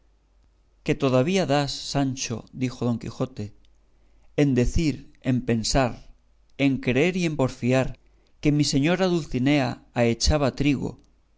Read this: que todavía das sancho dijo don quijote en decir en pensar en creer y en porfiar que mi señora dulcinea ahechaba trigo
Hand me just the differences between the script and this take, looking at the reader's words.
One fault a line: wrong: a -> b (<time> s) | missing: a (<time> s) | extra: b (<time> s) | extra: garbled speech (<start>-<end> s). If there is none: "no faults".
no faults